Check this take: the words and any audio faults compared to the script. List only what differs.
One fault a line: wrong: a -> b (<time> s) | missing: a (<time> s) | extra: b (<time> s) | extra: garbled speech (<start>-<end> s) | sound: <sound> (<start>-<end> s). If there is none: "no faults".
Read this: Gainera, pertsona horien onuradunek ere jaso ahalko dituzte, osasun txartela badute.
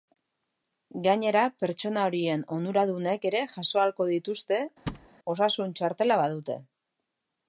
sound: thud (4.9-5.1 s)